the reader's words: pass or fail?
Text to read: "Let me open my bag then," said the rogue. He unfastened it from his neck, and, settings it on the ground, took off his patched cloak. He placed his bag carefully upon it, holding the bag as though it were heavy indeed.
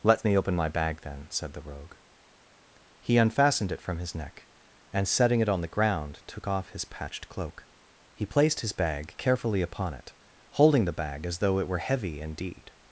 fail